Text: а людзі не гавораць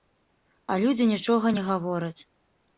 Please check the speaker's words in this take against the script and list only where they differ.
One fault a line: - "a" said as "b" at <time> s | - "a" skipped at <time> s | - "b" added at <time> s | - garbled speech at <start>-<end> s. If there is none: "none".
- "нічога" added at 1.1 s